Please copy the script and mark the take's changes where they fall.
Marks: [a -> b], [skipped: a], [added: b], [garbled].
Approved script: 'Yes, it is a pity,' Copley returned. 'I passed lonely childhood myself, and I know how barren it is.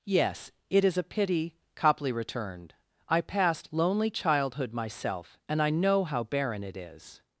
'Yes, it is a pity,' Copley returned. 'I passed lonely childhood myself, and I know how barren it is.